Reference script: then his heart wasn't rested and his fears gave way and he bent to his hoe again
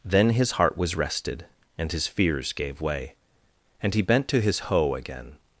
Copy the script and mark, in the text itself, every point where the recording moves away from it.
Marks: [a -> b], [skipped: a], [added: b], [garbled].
then his heart [wasn't -> was] rested and his fears gave way and he bent to his hoe again